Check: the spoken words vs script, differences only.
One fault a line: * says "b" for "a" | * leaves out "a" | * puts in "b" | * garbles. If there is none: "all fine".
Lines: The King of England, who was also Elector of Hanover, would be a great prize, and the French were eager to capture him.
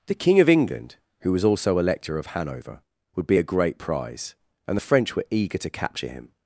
all fine